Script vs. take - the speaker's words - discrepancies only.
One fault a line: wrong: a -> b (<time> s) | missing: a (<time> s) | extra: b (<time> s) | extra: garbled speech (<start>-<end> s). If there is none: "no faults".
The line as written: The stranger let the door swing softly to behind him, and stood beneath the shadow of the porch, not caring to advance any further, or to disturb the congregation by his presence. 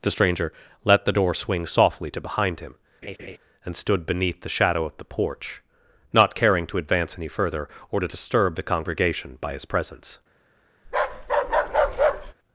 no faults